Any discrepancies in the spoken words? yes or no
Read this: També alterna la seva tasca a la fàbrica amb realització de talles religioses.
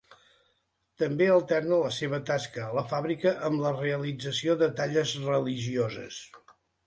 yes